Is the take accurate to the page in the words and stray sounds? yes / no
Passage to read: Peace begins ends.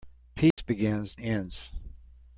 no